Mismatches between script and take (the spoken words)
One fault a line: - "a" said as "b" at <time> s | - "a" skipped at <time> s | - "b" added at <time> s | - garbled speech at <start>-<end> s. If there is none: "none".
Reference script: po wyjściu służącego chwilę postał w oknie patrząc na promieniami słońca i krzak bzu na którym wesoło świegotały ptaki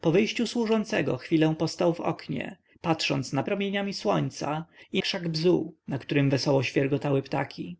none